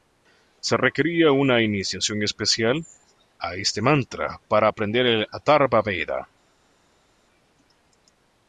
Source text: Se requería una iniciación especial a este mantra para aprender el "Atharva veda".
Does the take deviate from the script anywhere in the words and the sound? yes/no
no